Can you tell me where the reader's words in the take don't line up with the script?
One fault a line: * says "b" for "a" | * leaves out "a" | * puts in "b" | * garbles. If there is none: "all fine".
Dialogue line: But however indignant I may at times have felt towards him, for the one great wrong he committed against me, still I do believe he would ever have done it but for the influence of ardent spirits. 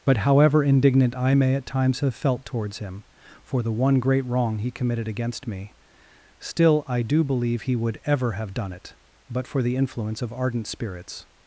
all fine